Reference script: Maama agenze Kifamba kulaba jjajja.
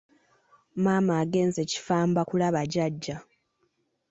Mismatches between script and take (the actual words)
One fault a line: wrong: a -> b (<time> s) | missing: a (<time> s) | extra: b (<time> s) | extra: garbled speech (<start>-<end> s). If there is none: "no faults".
no faults